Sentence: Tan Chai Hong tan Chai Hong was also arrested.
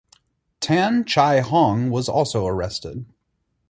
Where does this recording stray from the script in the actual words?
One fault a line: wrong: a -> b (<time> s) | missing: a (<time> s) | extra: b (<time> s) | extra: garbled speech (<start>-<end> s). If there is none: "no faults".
missing: tan Chai Hong (1.9 s)